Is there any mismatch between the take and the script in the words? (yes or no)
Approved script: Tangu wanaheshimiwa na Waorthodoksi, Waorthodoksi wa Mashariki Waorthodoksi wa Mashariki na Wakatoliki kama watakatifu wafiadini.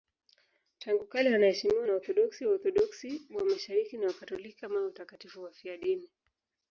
yes